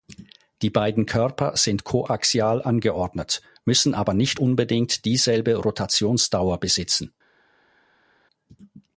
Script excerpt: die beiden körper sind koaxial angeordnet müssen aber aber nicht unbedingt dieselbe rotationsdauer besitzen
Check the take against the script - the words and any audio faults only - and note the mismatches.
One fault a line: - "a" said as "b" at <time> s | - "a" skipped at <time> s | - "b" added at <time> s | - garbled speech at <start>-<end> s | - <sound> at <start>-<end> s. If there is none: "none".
- "aber" skipped at 4.2 s